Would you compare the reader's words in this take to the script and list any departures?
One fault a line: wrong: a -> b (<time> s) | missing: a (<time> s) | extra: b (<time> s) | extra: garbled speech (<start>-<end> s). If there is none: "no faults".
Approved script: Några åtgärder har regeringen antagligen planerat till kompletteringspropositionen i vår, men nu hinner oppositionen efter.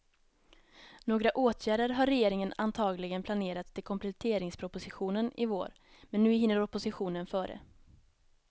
wrong: efter -> före (7.2 s)